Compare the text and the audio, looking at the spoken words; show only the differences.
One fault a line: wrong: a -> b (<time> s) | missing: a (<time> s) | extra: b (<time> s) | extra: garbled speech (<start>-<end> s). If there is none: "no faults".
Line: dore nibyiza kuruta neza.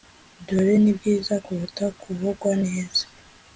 extra: kuvugwa (2.0 s)